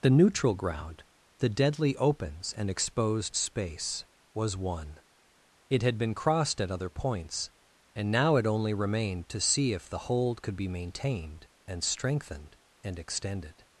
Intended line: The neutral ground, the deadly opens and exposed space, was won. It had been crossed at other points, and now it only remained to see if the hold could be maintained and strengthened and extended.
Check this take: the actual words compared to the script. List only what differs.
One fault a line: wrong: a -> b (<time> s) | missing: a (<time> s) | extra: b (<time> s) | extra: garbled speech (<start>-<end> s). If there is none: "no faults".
no faults